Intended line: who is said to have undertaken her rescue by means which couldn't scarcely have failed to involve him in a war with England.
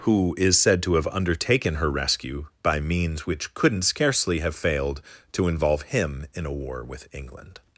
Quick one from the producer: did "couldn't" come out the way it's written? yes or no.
yes